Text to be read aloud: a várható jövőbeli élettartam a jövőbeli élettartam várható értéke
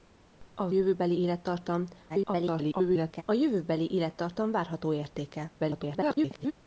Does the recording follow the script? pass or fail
fail